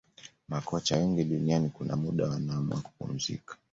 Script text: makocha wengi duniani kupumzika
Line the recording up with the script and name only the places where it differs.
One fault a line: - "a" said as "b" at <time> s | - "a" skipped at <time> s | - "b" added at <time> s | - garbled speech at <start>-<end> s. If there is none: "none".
- "kuna muda wanaamua" added at 1.7 s